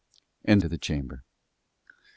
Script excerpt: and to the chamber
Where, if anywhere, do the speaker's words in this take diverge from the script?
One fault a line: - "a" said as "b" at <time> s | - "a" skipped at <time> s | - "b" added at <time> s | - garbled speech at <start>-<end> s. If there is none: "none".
none